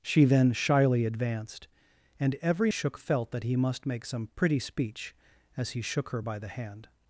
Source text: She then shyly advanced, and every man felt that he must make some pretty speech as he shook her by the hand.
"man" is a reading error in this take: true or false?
true